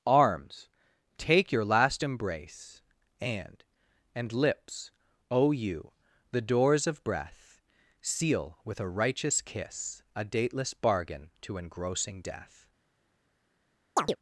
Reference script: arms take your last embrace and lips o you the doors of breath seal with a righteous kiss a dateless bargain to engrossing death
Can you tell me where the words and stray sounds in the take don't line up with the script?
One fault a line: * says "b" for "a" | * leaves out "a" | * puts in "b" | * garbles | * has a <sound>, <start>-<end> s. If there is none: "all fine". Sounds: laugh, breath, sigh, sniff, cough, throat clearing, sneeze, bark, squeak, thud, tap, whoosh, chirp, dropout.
* puts in "and"
* has a chirp, 14.0-14.2 s